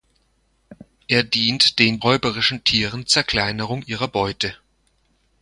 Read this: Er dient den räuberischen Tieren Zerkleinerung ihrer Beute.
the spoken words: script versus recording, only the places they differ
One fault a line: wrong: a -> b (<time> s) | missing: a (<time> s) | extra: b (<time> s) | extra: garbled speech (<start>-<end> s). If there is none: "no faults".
no faults